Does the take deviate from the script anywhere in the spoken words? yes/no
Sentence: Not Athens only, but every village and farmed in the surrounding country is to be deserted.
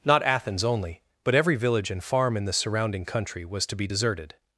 yes